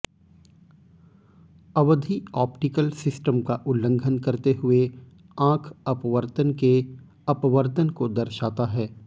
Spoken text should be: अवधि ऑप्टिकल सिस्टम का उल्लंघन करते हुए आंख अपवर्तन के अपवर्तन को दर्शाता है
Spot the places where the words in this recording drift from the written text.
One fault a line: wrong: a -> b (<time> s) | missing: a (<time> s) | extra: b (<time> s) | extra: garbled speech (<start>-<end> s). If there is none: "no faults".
no faults